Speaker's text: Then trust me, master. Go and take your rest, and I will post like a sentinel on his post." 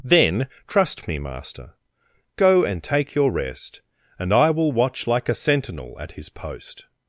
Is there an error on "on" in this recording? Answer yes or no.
yes